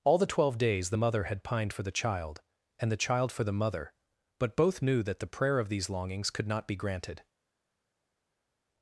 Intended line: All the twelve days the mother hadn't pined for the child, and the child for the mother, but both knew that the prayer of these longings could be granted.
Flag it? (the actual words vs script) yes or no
yes